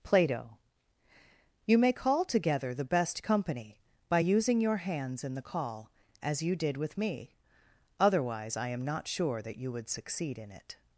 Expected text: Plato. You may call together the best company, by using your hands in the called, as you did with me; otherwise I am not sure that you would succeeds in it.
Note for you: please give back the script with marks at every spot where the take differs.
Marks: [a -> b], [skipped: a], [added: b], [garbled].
Plato. You may call together the best company, by using your hands in the [called, -> call] as you did with me; otherwise I am not sure that you would [succeeds -> succeed] in it.